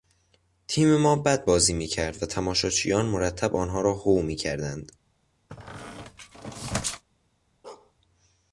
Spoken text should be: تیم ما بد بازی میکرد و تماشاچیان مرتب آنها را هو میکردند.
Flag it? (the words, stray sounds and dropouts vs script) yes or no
yes